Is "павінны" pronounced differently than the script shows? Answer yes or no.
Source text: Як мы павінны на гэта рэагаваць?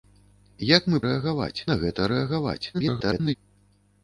yes